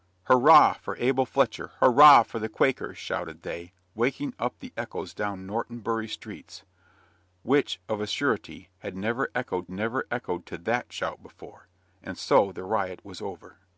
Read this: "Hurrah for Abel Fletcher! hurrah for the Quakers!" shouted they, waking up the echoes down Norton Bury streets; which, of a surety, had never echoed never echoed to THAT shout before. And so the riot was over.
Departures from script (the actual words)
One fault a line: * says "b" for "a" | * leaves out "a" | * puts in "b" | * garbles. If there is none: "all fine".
all fine